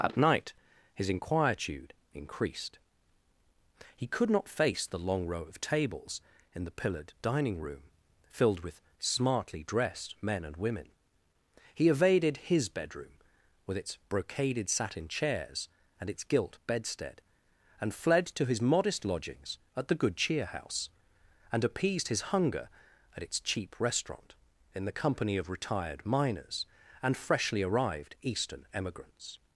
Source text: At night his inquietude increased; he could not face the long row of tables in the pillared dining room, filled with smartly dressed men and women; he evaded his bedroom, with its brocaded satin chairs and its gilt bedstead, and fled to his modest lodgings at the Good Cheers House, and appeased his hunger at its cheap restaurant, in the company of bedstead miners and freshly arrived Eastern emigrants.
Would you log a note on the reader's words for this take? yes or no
yes